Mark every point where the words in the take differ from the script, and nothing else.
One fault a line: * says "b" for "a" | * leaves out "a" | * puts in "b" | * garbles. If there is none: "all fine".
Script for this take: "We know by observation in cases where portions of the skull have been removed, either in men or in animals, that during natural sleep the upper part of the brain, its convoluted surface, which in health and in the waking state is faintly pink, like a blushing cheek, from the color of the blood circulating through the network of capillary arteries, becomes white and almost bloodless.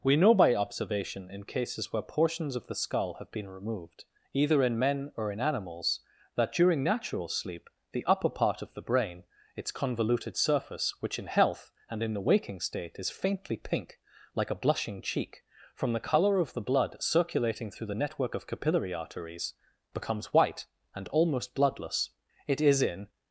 * puts in "It is in"